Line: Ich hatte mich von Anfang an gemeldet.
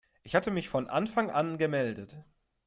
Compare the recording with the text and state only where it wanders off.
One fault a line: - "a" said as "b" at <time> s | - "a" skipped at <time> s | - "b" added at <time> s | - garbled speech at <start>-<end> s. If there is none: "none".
none